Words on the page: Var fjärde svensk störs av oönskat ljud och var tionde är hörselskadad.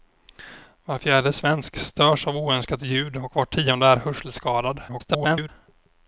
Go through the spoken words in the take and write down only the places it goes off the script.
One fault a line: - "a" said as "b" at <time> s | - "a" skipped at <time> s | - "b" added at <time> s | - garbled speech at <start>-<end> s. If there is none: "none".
- garbled speech at 4.9-5.5 s